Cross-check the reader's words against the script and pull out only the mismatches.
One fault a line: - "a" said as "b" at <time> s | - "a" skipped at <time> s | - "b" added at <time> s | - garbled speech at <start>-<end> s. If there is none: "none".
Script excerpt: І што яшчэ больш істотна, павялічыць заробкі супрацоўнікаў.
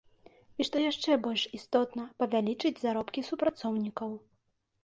none